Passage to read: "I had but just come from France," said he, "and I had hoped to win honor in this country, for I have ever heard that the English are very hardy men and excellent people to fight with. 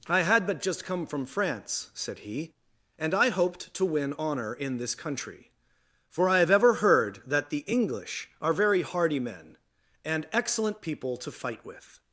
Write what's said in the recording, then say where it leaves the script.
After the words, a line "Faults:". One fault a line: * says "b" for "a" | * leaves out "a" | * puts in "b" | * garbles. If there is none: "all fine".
"I had but just come from France," said he, "and I hoped to win honor in this country, for I have ever heard that the English are very hardy men and excellent people to fight with.
Faults:
* leaves out "had"